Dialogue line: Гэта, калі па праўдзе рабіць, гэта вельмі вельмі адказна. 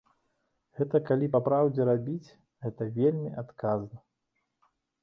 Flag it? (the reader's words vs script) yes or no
yes